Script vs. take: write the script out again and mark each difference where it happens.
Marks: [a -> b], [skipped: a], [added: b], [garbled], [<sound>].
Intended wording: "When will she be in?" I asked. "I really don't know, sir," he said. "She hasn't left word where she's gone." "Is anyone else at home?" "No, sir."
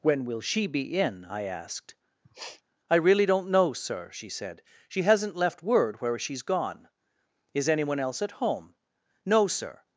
"When will she be in?" I asked. [sniff] "I really don't know, sir," [he -> she] said. "She hasn't left word where she's gone." "Is anyone else at home?" "No, sir."